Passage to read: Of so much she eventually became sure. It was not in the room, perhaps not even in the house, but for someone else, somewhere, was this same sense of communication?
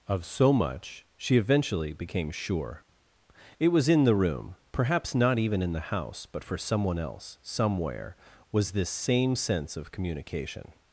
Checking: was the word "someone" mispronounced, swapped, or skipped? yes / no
no